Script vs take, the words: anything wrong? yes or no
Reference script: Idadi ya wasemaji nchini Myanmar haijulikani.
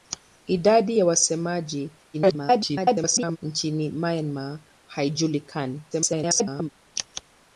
yes